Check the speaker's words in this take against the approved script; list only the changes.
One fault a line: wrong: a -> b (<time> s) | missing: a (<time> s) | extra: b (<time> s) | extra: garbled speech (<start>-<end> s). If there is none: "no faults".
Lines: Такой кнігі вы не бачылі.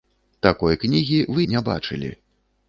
no faults